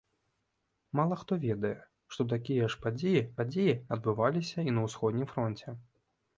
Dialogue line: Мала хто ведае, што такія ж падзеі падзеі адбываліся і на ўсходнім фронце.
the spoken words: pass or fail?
pass